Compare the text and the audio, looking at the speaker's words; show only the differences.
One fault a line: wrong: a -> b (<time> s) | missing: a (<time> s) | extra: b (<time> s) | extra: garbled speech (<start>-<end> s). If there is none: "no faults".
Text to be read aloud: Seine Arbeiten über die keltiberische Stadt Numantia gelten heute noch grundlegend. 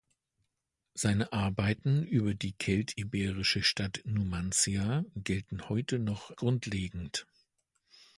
no faults